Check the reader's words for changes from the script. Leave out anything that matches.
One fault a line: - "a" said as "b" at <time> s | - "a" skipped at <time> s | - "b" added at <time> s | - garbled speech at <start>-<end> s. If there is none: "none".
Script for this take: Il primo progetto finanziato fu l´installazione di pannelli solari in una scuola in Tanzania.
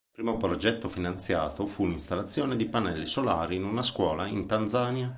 none